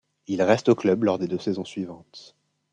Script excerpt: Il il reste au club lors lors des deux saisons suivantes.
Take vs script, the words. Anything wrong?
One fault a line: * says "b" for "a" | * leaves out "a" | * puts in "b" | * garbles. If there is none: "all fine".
* leaves out "il"
* leaves out "lors"